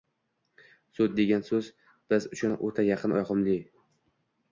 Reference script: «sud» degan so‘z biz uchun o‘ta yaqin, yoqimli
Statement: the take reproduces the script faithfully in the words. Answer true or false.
true